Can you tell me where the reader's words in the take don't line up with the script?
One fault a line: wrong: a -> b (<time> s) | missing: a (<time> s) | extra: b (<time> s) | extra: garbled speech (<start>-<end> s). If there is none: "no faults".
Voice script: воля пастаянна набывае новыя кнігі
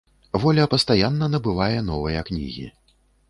no faults